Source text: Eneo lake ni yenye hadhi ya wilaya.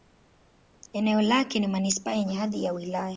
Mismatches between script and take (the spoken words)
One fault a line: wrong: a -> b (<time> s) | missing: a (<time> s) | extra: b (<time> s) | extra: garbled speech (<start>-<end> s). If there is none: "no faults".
extra: manisipaa (1.7 s)